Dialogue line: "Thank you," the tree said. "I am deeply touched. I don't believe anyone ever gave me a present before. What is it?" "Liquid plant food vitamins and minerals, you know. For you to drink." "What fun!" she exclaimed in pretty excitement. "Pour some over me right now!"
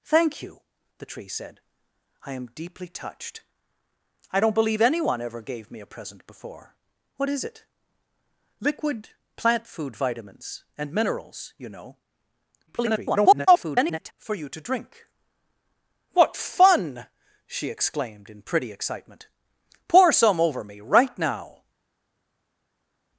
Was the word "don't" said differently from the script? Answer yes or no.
no